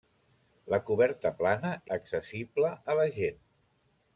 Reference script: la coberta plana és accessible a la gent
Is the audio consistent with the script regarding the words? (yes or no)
no